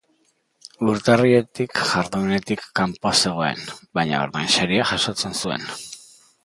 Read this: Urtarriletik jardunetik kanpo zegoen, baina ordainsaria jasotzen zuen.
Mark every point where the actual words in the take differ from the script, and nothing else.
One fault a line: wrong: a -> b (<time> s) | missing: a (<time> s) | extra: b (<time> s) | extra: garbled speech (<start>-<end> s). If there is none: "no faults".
no faults